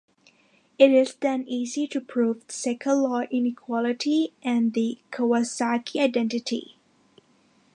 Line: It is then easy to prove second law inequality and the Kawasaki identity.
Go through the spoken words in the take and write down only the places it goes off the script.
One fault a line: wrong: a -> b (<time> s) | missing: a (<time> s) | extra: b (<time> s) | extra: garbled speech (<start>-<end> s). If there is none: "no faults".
no faults